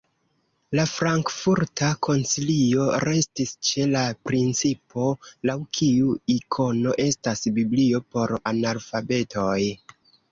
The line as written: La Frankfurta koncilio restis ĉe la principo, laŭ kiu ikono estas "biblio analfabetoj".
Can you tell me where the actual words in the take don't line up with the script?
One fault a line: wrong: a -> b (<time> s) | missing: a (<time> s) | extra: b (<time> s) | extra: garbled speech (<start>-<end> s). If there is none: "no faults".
extra: por (8.1 s)